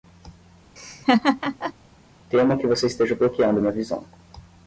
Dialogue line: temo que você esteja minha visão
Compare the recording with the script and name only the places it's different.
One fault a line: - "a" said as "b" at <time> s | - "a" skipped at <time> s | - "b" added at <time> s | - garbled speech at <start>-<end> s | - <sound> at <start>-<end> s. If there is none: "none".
- laugh at 0.8-1.7 s
- "bloqueando" added at 3.1 s